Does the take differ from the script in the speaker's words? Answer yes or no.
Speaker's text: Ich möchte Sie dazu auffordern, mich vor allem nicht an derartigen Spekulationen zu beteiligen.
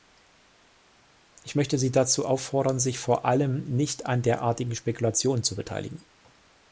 yes